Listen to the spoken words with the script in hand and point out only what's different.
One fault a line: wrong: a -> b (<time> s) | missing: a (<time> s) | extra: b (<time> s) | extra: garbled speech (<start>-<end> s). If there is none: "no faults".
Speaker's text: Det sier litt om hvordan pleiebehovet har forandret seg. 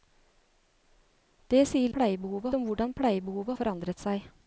wrong: litt -> pleiebehovet (1.9 s)
missing: har (3.6 s)